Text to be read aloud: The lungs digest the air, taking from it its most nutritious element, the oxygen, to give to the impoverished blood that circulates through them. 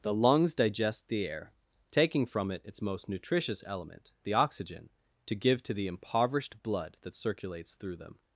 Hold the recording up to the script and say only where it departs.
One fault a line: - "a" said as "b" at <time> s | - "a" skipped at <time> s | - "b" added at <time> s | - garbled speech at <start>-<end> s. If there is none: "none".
none